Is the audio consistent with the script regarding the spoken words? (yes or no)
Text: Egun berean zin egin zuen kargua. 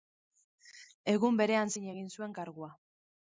yes